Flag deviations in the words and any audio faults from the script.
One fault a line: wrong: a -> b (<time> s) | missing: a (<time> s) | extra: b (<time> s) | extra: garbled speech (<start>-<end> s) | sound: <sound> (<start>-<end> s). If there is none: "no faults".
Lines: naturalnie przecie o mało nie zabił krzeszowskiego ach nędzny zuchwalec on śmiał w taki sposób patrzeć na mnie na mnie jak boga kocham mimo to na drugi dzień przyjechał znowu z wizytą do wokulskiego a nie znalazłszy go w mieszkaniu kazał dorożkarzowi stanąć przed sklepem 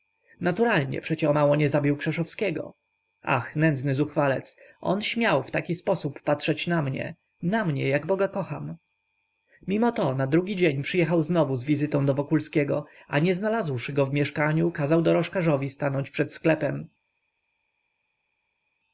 no faults